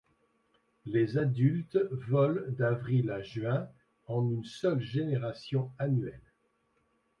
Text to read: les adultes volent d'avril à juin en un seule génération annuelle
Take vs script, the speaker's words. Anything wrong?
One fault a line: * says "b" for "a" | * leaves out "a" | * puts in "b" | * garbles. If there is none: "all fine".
* says "une" for "un"